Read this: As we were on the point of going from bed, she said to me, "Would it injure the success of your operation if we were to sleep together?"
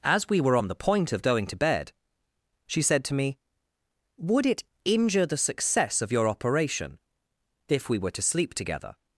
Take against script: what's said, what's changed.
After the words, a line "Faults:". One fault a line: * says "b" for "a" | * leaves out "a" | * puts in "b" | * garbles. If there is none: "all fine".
As we were on the point of going to bed, she said to me, "Would it injure the success of your operation if we were to sleep together?"
Faults:
* says "to" for "from"